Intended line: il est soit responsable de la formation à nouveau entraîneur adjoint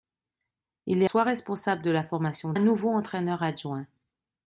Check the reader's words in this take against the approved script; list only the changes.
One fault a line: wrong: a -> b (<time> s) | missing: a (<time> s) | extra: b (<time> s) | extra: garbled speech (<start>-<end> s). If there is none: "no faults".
no faults